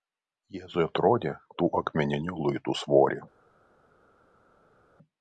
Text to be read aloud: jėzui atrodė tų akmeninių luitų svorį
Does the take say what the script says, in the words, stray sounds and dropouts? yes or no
yes